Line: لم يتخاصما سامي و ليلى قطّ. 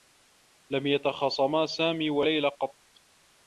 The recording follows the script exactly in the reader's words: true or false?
true